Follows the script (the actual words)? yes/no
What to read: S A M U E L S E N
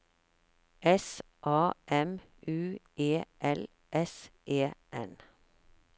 yes